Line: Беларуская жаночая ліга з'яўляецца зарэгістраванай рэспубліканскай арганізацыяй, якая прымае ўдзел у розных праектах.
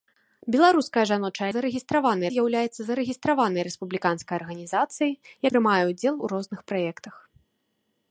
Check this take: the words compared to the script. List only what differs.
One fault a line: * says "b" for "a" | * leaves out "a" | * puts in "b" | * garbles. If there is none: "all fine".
* says "зарэгістраванай" for "ліга"
* leaves out "якая"